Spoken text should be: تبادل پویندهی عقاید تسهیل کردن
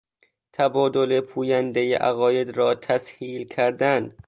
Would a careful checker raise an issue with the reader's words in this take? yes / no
yes